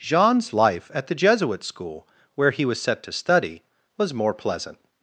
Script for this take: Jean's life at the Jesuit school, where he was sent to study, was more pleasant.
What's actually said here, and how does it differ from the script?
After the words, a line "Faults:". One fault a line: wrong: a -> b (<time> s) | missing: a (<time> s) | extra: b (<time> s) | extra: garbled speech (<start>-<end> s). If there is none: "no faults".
Jean's life at the Jesuit school, where he was set to study, was more pleasant.
Faults:
wrong: sent -> set (2.8 s)